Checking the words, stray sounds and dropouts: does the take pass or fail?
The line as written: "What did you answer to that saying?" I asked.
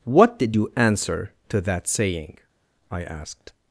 pass